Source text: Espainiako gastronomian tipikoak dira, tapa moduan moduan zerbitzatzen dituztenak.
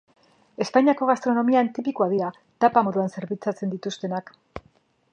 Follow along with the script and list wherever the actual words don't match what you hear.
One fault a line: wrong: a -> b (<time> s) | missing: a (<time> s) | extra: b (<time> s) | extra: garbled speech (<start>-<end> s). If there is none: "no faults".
missing: moduan (3.1 s)